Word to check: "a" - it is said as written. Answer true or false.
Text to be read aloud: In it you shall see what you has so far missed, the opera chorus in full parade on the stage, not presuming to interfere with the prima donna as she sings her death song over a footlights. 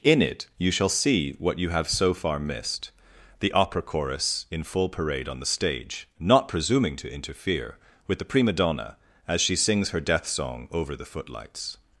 false